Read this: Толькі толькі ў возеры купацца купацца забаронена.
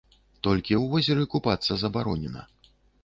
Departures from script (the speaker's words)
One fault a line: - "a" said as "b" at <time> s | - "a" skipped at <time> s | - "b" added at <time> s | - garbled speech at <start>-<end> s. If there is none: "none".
- "толькі" skipped at 0.7 s
- "купацца" skipped at 1.7 s